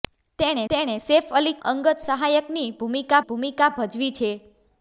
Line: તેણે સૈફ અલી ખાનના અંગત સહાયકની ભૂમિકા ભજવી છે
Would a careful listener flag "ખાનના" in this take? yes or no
yes